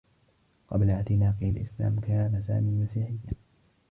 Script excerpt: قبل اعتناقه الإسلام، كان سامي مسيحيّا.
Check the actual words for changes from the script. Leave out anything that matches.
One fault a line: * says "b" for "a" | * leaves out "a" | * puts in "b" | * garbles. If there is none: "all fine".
all fine